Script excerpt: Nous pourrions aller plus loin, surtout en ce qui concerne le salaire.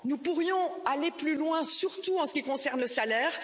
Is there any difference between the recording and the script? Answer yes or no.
no